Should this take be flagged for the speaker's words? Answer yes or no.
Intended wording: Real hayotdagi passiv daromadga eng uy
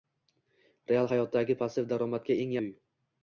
no